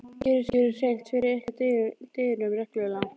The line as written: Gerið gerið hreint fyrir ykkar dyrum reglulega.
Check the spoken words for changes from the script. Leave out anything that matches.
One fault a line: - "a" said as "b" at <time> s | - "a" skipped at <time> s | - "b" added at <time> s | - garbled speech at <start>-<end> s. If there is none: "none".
none